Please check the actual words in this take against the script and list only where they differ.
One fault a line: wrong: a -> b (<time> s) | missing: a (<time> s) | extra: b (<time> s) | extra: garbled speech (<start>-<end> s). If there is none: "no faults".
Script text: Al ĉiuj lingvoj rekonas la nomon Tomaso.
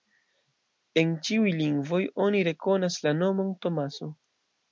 wrong: Al -> En (1.0 s)
extra: oni (2.3 s)